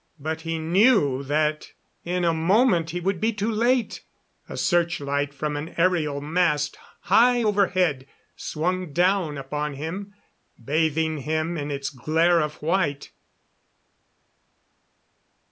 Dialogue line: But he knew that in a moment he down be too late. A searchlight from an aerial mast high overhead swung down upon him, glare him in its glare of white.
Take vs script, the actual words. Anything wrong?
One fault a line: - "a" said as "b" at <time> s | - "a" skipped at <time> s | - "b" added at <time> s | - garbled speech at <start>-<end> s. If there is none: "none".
- "down" said as "would" at 3.0 s
- "glare" said as "bathing" at 10.6 s